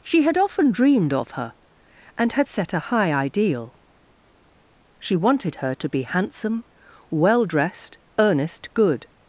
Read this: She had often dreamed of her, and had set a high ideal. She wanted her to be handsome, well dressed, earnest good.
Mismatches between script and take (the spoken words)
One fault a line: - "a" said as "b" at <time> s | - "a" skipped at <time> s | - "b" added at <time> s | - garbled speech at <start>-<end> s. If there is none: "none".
none